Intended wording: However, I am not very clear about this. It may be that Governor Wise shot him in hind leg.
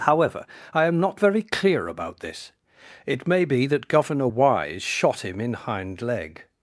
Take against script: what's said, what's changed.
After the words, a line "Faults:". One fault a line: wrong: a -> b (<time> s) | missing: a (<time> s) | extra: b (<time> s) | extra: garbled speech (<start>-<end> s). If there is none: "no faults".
However, I am not very clear about this. It may be that Governor Wise shot him in hind leg.
Faults:
no faults